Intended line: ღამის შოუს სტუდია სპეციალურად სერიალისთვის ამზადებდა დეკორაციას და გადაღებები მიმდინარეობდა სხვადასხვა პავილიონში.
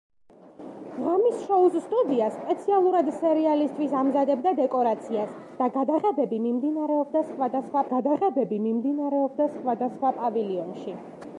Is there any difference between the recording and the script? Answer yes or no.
yes